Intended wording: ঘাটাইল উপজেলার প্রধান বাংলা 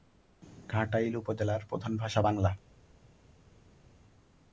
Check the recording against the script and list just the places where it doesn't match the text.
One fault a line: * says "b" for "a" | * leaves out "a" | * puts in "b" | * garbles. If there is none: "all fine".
* puts in "ভাষা"